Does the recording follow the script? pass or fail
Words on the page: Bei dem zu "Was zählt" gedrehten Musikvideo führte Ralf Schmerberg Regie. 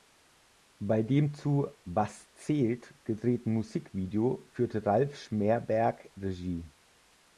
pass